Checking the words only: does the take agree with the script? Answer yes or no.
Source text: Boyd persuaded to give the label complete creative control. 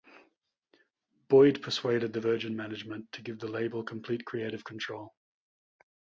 no